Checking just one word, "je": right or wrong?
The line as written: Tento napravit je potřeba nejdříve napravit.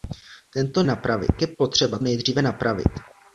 right